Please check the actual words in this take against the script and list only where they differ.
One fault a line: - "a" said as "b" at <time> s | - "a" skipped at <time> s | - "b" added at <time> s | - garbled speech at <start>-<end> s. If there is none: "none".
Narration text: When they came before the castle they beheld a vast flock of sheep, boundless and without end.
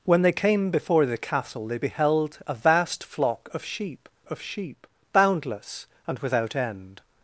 - "of sheep" added at 4.3 s